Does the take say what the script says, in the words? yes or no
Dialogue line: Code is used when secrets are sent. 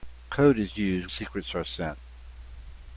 no